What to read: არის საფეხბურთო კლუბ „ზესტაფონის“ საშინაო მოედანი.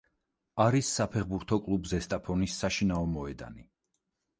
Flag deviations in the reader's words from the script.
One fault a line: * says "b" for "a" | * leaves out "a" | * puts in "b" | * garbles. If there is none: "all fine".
all fine